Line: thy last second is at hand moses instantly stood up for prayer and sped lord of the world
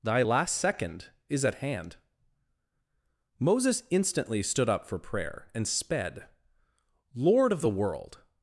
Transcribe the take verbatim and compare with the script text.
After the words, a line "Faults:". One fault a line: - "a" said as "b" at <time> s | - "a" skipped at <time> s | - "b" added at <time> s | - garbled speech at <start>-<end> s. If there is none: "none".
thy last second is at hand moses instantly stood up for prayer and sped lord of the world
Faults:
none